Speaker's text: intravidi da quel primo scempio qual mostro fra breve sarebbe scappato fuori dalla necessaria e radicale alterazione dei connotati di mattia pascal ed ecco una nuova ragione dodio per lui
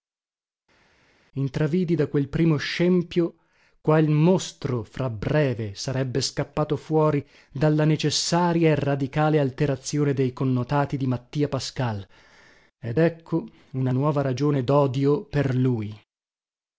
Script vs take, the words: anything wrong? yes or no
no